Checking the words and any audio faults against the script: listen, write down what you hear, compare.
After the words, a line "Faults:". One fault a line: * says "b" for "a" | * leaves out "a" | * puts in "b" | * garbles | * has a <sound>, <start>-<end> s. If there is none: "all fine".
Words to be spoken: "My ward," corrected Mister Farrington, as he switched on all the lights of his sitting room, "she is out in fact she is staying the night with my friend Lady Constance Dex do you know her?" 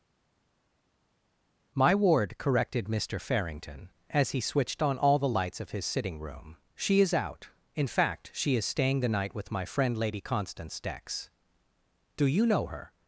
"My ward," corrected Mister Farrington, as he switched on all the lights of his sitting room, "she is out in fact she is staying the night with my friend Lady Constance Dex do you know her?"
Faults:
all fine